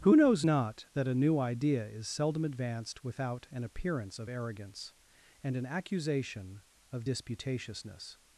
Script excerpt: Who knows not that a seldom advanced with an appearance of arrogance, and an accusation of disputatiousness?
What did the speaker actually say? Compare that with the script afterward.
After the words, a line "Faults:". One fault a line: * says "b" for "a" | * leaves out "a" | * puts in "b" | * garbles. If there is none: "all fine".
Who knows not that a new idea is seldom advanced without an appearance of arrogance, and an accusation of disputatiousness?
Faults:
* puts in "new idea is"
* says "without" for "with"